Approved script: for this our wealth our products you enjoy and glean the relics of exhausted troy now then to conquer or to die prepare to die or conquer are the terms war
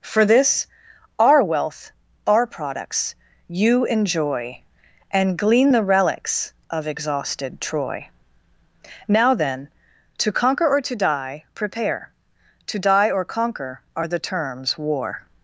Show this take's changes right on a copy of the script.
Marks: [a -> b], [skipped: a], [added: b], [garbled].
for this our wealth our products you enjoy and glean the relics of exhausted troy now then to conquer or to die prepare to die or conquer are the terms war